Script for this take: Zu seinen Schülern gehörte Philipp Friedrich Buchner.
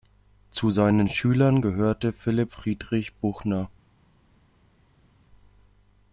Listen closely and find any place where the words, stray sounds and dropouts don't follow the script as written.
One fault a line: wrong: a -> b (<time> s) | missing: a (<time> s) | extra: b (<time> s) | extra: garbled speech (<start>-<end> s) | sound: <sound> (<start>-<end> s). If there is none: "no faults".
no faults